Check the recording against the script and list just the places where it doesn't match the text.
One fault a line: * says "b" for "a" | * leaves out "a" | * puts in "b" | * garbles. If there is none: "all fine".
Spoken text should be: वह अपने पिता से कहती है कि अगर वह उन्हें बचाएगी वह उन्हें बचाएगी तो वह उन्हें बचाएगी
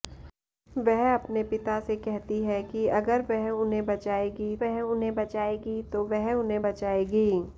all fine